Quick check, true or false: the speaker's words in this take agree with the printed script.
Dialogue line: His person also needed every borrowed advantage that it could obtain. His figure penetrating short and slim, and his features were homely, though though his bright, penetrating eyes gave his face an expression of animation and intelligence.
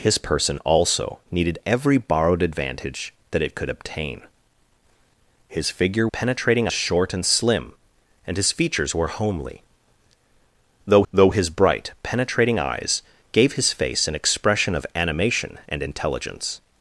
true